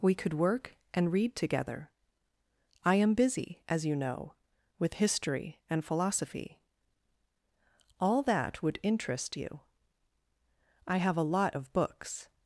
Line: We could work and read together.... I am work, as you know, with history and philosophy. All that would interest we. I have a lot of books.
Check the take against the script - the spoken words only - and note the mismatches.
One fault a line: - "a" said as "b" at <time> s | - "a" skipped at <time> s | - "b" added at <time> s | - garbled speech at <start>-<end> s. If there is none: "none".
- "work" said as "busy" at 3.1 s
- "we" said as "you" at 9.4 s